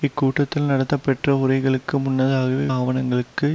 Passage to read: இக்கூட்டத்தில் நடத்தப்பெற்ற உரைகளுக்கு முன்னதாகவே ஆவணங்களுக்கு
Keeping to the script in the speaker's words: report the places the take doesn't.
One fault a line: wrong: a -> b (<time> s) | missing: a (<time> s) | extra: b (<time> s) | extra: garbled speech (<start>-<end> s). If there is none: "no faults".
no faults